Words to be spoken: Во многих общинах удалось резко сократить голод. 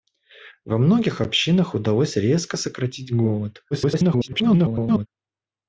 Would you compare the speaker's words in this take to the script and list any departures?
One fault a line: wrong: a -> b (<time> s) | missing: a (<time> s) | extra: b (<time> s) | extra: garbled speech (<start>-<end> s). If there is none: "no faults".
extra: garbled speech (3.7-5.1 s)